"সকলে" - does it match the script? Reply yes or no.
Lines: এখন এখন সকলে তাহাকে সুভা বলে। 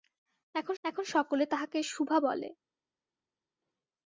yes